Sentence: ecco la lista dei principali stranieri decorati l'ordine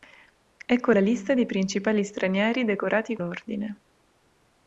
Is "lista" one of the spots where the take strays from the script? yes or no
no